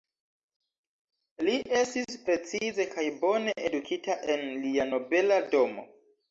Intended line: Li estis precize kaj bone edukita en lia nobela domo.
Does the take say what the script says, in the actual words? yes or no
yes